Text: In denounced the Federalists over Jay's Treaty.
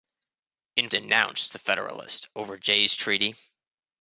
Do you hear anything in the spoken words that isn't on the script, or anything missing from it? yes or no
no